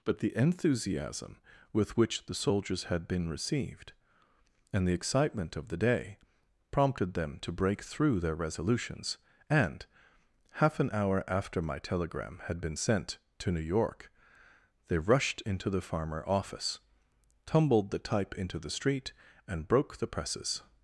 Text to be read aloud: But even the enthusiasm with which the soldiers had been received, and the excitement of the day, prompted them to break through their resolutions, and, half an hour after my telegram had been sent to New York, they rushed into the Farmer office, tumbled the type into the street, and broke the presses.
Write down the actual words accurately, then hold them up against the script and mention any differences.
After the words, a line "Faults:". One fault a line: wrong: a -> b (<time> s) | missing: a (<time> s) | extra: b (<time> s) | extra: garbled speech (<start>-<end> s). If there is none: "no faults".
But the enthusiasm with which the soldiers had been received, and the excitement of the day, prompted them to break through their resolutions, and, half an hour after my telegram had been sent to New York, they rushed into the Farmer office, tumbled the type into the street, and broke the presses.
Faults:
missing: even (0.2 s)